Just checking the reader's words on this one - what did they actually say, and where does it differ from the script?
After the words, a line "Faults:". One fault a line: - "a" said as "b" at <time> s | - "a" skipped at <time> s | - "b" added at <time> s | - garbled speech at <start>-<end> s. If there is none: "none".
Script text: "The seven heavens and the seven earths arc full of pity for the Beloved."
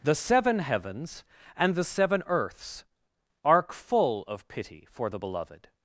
"The seven heavens and the seven earths arc full of pity for the Beloved."
Faults:
none